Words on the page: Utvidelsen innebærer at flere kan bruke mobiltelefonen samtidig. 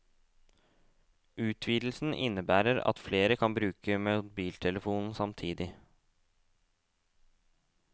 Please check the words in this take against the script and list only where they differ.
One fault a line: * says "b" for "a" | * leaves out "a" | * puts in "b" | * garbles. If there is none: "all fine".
all fine